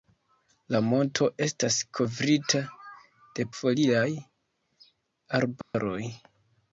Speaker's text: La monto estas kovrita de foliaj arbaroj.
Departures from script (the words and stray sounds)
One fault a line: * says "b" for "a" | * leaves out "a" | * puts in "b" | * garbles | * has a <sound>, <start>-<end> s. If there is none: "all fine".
* has a dropout, 5.6-5.7 s